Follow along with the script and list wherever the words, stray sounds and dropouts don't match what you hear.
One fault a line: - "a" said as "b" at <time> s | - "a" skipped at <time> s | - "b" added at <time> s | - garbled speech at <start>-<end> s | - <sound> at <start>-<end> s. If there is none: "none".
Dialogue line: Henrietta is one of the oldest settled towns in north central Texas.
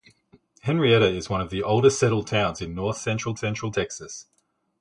- "central" added at 3.3 s